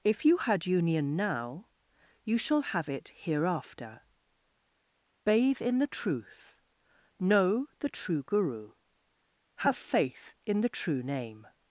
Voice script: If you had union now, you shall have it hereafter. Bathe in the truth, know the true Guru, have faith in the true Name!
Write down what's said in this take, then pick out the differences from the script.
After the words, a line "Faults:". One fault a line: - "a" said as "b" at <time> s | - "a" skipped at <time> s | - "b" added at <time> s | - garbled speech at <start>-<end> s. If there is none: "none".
If you had union now, you shall have it hereafter. Bathe in the truth, know the true Guru, have faith in the true Name!
Faults:
none